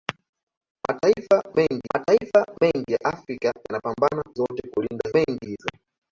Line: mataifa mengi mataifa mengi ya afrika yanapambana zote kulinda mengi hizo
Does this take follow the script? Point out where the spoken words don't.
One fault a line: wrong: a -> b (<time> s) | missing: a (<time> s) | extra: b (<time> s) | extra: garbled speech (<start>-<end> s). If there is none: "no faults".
no faults